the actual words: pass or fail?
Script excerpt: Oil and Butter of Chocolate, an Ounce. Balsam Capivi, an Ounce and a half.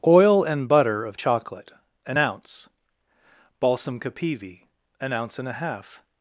pass